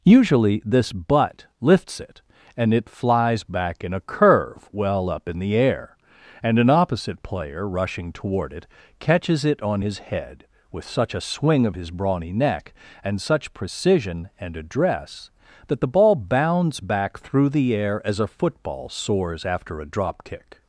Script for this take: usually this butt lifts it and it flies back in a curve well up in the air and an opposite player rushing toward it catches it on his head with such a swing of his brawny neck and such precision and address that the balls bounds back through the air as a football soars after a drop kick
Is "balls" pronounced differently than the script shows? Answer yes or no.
yes